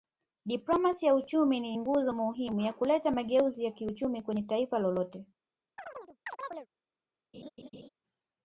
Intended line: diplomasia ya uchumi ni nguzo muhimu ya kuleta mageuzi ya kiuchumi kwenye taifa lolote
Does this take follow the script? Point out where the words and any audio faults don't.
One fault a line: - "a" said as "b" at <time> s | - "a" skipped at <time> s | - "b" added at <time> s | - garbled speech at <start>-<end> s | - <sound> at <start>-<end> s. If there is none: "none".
- chirp at 5.8-6.7 s
- laugh at 7.3-7.9 s